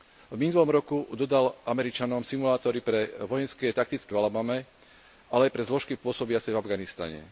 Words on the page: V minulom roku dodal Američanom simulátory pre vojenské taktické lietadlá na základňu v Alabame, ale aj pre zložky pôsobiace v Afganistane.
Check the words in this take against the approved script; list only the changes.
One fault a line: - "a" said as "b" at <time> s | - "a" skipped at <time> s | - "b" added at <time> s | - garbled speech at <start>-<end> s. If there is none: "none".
- "lietadlá na základňu" skipped at 4.1 s